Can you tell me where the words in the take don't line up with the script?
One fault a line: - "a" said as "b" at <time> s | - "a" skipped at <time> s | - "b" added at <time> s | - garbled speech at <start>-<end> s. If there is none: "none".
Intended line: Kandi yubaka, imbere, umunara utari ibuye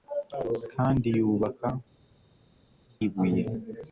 - "imbere umunara utari" skipped at 1.7 s